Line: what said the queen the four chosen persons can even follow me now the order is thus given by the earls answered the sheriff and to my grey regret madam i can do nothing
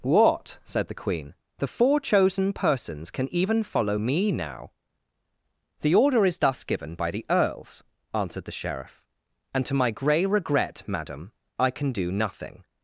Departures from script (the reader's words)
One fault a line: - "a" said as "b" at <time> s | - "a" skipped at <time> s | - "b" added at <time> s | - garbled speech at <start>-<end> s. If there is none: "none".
none